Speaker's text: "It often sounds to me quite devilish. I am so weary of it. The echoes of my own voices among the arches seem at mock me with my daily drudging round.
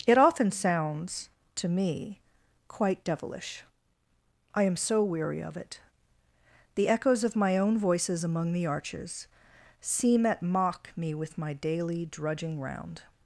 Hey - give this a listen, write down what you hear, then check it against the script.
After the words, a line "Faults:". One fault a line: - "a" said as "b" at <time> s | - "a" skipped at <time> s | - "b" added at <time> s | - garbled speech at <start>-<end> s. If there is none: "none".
"It often sounds to me quite devilish. I am so weary of it. The echoes of my own voices among the arches seem at mock me with my daily drudging round.
Faults:
none